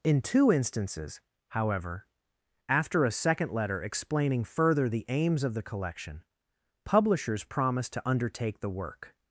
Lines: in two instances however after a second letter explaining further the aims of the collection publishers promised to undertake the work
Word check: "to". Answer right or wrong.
right